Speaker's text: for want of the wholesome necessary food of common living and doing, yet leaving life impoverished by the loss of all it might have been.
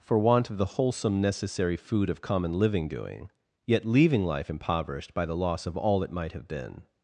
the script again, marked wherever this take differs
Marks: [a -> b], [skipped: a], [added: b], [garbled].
for want of the wholesome necessary food of common living [skipped: and] doing, yet leaving life impoverished by the loss of all it might have been.